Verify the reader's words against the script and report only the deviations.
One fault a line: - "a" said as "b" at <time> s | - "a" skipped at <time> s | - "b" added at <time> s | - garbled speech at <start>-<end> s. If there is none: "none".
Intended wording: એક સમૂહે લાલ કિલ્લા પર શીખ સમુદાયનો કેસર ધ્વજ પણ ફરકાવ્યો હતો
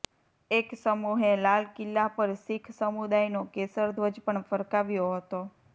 none